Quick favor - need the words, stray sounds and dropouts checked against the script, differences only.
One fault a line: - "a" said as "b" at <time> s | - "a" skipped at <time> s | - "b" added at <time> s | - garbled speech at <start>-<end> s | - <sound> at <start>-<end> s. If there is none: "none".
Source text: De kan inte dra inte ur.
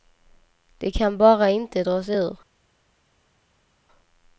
- "bara" added at 1.2 s
- "inte" said as "sig" at 2.0 s